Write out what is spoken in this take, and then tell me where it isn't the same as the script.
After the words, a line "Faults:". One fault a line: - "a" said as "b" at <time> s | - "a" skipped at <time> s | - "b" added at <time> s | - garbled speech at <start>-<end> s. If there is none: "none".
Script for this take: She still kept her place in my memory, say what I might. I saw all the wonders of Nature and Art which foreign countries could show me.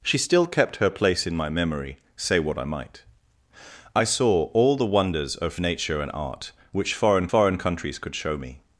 She still kept her place in my memory, say what I might. I saw all the wonders of Nature and Art which foreign foreign countries could show me.
Faults:
- "foreign" added at 7.3 s